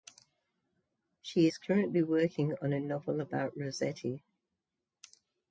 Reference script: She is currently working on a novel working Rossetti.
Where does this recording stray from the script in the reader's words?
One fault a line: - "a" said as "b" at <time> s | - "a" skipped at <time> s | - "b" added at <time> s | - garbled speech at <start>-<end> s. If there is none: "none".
- "working" said as "about" at 3.2 s